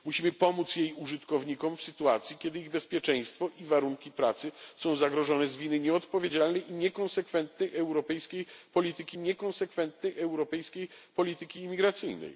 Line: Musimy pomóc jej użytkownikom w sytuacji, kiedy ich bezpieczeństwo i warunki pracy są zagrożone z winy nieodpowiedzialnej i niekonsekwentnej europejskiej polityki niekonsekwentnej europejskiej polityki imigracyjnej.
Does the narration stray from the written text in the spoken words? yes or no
no